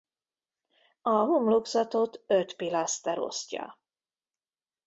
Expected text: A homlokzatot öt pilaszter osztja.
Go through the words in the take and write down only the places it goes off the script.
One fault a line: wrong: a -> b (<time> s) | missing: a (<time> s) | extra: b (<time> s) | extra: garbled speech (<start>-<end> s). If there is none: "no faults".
no faults